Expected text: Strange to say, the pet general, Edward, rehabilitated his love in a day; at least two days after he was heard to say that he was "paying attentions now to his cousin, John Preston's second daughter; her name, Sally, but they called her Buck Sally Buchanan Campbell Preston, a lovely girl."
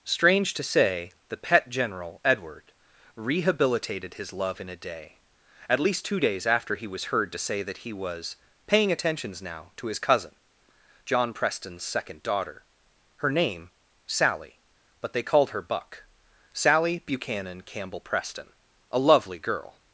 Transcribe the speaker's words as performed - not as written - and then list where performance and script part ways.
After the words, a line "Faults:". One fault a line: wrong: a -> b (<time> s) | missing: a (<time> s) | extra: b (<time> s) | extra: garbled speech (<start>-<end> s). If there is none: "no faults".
Strange to say, the pet general, Edward, rehabilitated his love in a day; at least two days after he was heard to say that he was "paying attentions now to his cousin, John Preston's second daughter; her name, Sally, but they called her Buck Sally Buchanan Campbell Preston, a lovely girl."
Faults:
no faults